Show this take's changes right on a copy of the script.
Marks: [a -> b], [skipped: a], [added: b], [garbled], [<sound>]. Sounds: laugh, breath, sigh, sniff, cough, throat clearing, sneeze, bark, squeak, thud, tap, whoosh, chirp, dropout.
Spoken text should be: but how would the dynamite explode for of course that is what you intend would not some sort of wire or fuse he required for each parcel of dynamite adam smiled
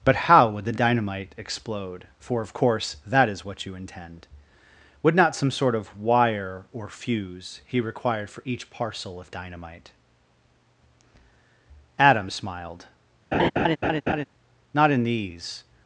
but how would the dynamite explode for of course that is what you intend would not some sort of wire or fuse he required for each parcel of dynamite adam smiled [laugh] [added: not in these]